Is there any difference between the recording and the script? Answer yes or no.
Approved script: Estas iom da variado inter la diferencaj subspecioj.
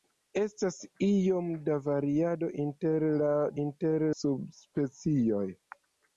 yes